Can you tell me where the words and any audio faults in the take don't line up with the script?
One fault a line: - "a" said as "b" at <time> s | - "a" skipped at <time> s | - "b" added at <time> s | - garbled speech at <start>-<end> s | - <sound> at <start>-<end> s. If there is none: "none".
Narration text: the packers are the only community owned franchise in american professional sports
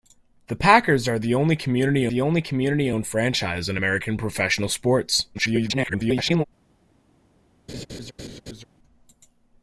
- "the only community" added at 2.1 s
- garbled speech at 5.3-6.4 s
- laugh at 7.7-8.6 s